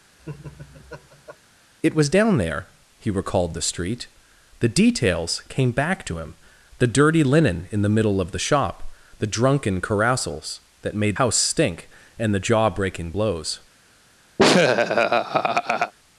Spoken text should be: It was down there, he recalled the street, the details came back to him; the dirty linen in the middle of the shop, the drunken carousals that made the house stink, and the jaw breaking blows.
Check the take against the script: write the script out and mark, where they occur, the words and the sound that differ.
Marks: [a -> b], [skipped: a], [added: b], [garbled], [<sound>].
[laugh] It was down there, he recalled the street, the details came back to him; the dirty linen in the middle of the shop, the drunken carousals that made [skipped: the] house stink, and the jaw breaking blows. [laugh]